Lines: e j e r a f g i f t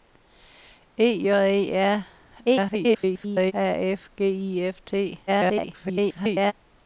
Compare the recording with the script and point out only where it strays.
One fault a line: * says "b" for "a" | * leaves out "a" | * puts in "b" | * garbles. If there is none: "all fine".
* garbles
* garbles